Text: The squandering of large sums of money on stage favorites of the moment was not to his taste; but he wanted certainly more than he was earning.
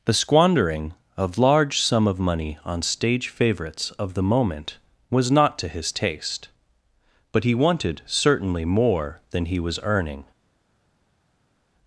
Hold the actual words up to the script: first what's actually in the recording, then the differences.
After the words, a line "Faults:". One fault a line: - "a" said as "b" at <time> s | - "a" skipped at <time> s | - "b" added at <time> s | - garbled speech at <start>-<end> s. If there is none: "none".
The squandering of large sum of money on stage favorites of the moment was not to his taste; but he wanted certainly more than he was earning.
Faults:
- "sums" said as "sum" at 1.8 s